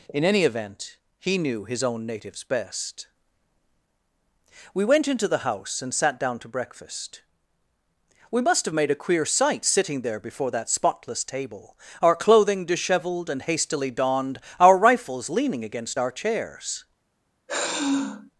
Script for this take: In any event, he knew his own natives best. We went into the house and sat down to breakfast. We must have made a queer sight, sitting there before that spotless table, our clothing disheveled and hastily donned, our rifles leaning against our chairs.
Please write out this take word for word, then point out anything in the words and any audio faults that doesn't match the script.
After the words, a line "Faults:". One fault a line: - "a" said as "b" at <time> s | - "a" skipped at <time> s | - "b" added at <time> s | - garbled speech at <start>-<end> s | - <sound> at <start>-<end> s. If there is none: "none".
In any event, he knew his own natives best. We went into the house and sat down to breakfast. We must have made a queer sight, sitting there before that spotless table, our clothing disheveled and hastily donned, our rifles leaning against our chairs.
Faults:
- sigh at 17.5-18.3 s